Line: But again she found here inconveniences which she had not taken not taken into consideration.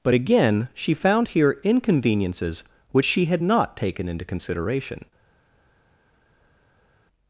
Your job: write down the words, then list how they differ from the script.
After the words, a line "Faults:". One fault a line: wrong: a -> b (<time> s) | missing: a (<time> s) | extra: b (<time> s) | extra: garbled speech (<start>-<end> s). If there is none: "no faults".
But again she found here inconveniences which she had not taken into consideration.
Faults:
missing: not taken (4.1 s)